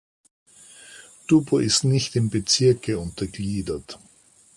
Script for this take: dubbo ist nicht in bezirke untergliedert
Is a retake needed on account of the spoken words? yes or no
no